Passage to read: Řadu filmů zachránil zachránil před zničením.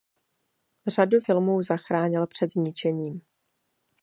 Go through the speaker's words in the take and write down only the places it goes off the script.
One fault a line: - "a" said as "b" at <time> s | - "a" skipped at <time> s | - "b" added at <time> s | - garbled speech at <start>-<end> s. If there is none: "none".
- "zachránil" skipped at 2.3 s